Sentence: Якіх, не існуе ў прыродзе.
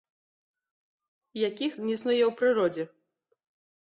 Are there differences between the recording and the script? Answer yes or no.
no